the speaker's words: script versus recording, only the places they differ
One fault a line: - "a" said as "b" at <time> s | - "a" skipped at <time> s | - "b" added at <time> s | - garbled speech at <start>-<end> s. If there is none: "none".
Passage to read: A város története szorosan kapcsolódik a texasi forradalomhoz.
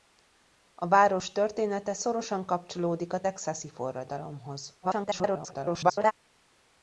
- garbled speech at 4.8-6.1 s